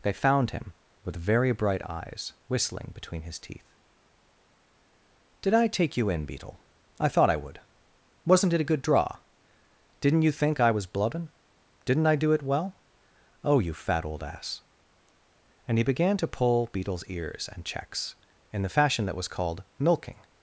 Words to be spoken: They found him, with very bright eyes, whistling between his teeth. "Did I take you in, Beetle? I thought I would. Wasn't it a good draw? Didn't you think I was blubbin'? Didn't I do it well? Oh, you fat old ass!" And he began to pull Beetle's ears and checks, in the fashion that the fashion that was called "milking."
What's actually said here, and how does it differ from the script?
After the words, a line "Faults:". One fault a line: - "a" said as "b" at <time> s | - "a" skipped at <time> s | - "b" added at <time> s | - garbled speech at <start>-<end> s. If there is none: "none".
They found him, with very bright eyes, whistling between his teeth. "Did I take you in, Beetle? I thought I would. Wasn't it a good draw? Didn't you think I was blubbin'? Didn't I do it well? Oh, you fat old ass!" And he began to pull Beetle's ears and checks, in the fashion that was called "milking."
Faults:
- "the fashion that" skipped at 19.2 s